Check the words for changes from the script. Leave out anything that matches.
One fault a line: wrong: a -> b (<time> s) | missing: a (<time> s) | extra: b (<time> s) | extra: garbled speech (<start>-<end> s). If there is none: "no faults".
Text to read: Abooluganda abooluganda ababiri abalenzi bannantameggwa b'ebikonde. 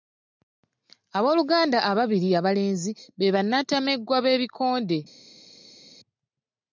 missing: abooluganda (1.8 s)
extra: be (3.2 s)